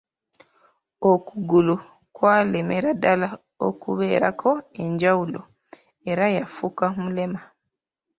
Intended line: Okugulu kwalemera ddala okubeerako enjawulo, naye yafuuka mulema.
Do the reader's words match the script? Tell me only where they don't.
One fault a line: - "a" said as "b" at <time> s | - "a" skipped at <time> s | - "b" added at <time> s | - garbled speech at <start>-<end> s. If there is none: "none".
- "naye" said as "era" at 6.1 s